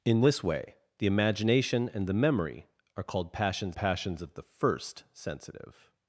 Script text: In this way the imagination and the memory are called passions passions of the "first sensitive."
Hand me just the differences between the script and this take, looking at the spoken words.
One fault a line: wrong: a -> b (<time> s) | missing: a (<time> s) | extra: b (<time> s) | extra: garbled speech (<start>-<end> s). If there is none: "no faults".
no faults